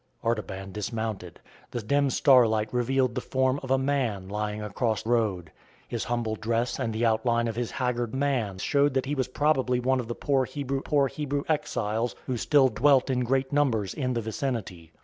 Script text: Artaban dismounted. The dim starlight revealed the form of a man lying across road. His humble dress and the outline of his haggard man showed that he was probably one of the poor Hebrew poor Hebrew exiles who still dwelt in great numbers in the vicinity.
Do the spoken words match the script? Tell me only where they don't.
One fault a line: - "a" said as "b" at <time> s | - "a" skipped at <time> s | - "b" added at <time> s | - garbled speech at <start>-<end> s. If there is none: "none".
none